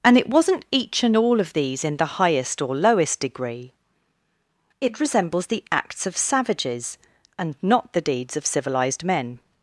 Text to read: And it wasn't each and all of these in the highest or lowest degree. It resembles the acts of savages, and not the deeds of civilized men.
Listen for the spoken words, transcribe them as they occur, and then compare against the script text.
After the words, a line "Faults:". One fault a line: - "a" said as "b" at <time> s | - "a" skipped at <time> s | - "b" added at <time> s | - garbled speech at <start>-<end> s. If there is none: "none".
And it wasn't each and all of these in the highest or lowest degree. It resembles the acts of savages, and not the deeds of civilized men.
Faults:
none